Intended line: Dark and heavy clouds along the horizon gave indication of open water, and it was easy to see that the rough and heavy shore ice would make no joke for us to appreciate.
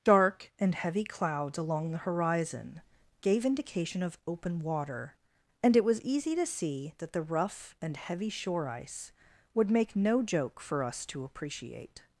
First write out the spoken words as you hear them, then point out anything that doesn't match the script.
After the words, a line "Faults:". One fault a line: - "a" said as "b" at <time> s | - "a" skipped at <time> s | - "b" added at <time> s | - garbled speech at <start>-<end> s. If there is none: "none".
Dark and heavy clouds along the horizon gave indication of open water, and it was easy to see that the rough and heavy shore ice would make no joke for us to appreciate.
Faults:
none